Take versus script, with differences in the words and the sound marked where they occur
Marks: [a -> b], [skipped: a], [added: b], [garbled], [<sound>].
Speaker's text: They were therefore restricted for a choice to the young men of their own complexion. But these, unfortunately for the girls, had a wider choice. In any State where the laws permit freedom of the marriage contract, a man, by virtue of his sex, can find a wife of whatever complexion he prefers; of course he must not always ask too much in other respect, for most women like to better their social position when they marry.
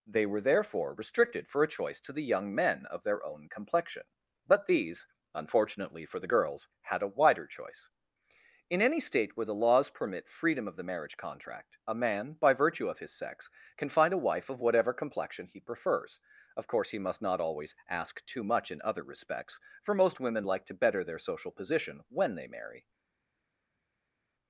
They were therefore restricted for a choice to the young men of their own complexion. But these, unfortunately for the girls, had a wider choice. In any State where the laws permit freedom of the marriage contract, a man, by virtue of his sex, can find a wife of whatever complexion he prefers; of course he must not always ask too much in other [respect, -> respects] for most women like to better their social position when they marry.